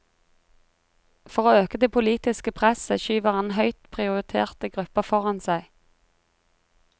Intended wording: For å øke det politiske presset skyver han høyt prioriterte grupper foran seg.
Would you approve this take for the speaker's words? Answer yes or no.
yes